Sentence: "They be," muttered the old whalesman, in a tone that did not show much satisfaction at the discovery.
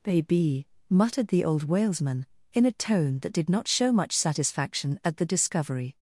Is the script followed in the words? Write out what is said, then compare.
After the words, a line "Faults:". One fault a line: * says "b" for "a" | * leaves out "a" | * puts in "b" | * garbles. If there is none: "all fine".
"Baby," muttered the old whalesman, in a tone that did not show much satisfaction at the discovery.
Faults:
* says "Baby" for "They be"